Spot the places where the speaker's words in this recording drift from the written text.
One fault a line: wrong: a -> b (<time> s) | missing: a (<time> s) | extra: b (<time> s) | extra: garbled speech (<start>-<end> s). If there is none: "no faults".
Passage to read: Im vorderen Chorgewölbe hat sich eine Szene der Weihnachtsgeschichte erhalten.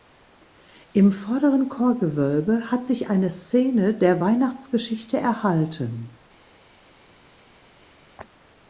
no faults